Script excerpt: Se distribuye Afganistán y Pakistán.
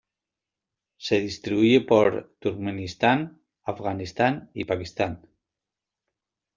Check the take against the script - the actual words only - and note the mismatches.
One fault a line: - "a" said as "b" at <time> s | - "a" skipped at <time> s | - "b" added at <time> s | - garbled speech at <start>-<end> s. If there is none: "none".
- "por Turkmenistán" added at 1.8 s